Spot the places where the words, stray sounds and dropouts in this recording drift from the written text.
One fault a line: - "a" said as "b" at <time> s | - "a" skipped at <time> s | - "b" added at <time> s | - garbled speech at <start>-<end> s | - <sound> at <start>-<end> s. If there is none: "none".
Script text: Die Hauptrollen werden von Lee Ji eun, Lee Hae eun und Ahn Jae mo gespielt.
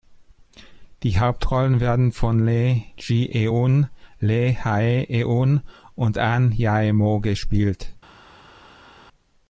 none